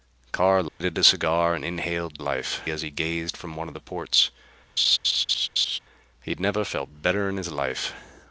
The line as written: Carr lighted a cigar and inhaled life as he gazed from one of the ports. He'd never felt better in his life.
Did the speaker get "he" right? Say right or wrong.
right